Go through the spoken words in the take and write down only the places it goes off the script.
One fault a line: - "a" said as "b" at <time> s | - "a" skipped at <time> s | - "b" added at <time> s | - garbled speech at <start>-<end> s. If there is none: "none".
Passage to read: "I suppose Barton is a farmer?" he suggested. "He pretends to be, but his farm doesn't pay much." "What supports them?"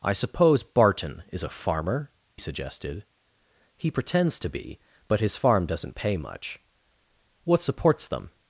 - "he" skipped at 2.1 s